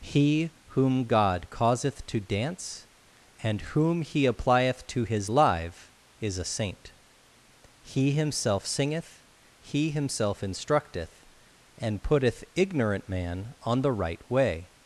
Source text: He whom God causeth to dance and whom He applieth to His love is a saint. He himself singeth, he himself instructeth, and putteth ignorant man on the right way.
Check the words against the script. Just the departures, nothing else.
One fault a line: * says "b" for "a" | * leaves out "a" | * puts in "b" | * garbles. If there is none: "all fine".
* says "live" for "love"